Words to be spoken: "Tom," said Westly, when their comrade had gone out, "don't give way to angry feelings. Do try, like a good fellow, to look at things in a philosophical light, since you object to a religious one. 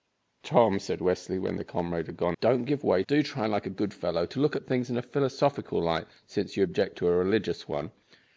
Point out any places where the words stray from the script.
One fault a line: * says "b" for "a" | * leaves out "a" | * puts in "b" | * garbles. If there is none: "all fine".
* leaves out "out"
* leaves out "to angry feelings"